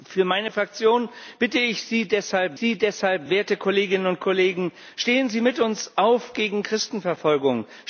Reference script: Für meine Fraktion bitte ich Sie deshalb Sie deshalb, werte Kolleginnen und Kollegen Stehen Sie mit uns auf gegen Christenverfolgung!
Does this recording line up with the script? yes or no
yes